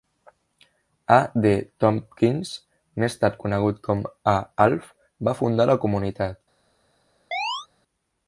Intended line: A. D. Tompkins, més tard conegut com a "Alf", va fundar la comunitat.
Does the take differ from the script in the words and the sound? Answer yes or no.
yes